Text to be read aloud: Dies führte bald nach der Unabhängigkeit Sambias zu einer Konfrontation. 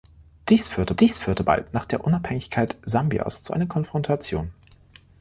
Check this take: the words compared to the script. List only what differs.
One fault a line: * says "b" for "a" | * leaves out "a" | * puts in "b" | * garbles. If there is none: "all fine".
* puts in "dies führte"